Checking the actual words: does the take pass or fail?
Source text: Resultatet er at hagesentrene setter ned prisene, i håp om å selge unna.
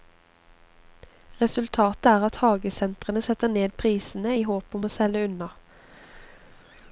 pass